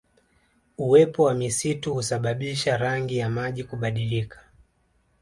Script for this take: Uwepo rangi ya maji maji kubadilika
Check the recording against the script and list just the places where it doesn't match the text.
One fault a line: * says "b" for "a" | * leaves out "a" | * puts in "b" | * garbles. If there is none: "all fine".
* puts in "wa misitu husababisha"
* leaves out "maji"